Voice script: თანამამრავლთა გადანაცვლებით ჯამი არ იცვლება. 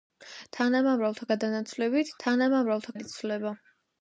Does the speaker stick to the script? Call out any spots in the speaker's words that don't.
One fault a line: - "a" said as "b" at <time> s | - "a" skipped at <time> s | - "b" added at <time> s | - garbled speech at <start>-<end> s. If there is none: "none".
- "ჯამი" said as "თანამამრავლთა" at 2.2 s